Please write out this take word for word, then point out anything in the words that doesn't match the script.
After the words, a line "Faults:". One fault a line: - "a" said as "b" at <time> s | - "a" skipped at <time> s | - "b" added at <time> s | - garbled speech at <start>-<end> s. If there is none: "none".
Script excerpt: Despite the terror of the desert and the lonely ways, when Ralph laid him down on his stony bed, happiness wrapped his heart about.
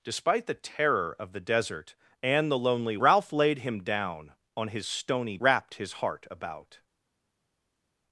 Despite the terror of the desert and the lonely Ralph laid him down on his stony wrapped his heart about.
Faults:
- "ways when" skipped at 3.0 s
- "bed happiness" skipped at 5.4 s